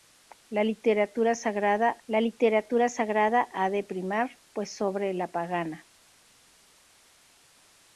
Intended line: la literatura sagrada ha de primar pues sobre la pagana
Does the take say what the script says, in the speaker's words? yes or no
no